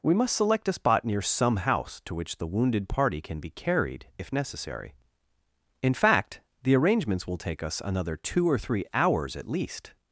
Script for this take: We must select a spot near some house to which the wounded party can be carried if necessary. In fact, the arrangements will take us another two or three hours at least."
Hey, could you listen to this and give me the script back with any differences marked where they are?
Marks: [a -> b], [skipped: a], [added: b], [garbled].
We must select a spot near some house to which the wounded party can be carried if necessary. In fact, the arrangements will take us another two or three hours at least."